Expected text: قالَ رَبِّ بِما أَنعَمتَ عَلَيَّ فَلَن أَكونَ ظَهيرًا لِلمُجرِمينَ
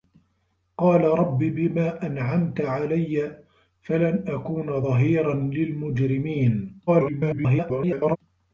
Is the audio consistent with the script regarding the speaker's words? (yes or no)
no